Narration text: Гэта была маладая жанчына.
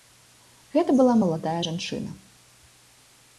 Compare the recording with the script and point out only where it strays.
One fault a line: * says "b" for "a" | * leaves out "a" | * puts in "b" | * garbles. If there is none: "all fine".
all fine